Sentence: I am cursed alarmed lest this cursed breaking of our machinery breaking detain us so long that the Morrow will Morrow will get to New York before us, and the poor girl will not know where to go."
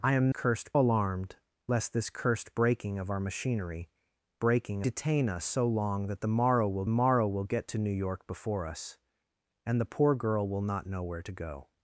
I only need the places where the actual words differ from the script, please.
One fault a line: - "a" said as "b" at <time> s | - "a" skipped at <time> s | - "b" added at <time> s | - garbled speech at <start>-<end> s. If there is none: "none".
none